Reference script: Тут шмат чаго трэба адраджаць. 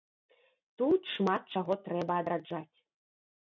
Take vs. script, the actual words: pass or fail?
pass